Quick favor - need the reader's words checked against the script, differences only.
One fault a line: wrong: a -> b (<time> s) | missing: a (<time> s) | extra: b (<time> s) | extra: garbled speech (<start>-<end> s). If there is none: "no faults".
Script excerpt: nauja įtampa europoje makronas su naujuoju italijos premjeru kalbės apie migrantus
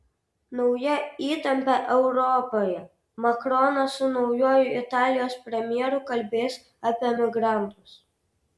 no faults